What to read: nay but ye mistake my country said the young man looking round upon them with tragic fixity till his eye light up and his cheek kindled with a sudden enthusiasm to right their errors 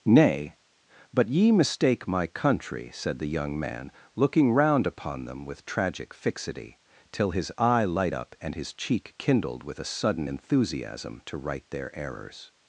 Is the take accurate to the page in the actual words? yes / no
yes